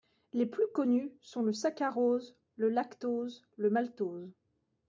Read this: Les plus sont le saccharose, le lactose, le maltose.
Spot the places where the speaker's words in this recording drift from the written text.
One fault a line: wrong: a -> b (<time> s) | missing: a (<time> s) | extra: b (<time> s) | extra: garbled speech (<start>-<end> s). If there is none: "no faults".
extra: connus (0.7 s)